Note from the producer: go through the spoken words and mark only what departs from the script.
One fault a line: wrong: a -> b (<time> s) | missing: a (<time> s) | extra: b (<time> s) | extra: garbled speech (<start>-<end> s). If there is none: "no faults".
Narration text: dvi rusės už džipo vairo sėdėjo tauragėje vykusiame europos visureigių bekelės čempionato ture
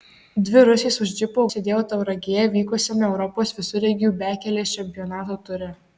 missing: vairo (1.4 s)